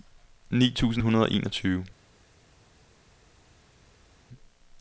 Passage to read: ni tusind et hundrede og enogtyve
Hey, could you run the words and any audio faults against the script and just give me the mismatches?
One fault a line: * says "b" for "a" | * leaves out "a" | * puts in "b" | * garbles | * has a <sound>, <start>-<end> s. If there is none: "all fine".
* leaves out "et"